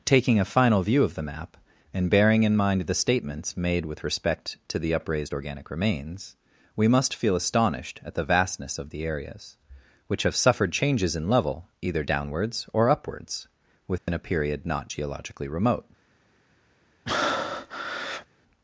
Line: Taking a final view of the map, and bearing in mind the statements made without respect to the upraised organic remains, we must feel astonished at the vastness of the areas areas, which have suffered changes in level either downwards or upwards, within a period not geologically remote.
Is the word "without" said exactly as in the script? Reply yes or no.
no